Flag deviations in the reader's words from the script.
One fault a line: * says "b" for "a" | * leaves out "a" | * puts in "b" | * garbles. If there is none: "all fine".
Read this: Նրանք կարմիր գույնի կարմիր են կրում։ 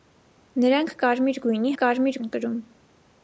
all fine